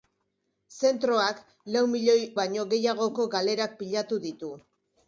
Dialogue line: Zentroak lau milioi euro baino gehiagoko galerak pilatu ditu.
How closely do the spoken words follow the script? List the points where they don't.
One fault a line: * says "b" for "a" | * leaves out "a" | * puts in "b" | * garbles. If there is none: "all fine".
* leaves out "euro"